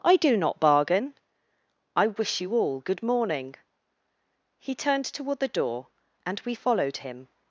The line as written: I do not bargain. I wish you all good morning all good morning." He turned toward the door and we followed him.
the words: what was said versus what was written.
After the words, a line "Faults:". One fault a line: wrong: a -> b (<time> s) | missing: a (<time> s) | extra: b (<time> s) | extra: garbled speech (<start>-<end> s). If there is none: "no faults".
I do not bargain. I wish you all good morning." He turned toward the door and we followed him.
Faults:
missing: all good morning (3.5 s)